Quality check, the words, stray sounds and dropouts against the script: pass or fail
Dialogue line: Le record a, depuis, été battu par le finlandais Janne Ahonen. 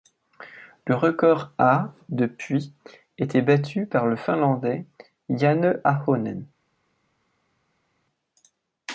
pass